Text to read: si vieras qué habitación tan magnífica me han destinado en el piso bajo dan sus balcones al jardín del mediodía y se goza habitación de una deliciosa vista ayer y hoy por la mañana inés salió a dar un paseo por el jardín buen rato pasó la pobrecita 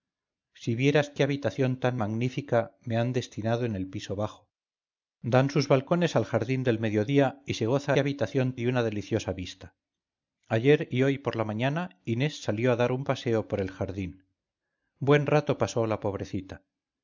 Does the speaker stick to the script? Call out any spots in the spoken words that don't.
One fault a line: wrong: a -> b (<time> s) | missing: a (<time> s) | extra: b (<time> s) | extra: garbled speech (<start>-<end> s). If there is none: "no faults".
no faults